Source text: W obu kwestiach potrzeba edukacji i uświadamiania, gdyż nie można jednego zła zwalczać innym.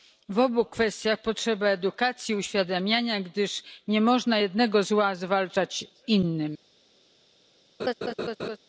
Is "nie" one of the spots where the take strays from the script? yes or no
no